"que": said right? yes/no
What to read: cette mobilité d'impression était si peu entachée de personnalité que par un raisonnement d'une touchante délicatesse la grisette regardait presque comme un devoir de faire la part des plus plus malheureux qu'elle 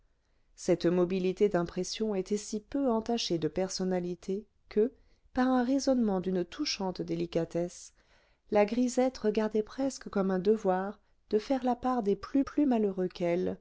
yes